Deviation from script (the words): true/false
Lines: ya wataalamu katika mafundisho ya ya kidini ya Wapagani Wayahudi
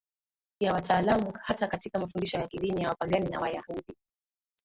true